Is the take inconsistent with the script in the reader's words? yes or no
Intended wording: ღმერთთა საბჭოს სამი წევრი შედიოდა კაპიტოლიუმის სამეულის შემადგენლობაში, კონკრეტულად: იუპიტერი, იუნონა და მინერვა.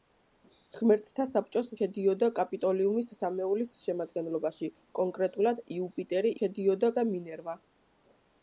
yes